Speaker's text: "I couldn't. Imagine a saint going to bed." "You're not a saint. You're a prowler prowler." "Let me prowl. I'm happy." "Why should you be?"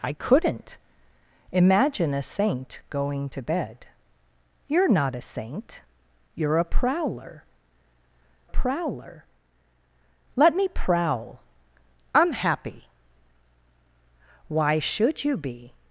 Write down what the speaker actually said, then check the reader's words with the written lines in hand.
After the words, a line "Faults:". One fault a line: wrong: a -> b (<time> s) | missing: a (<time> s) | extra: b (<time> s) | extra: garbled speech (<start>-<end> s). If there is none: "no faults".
"I couldn't. Imagine a saint going to bed." "You're not a saint. You're a prowler prowler." "Let me prowl. I'm happy." "Why should you be?"
Faults:
no faults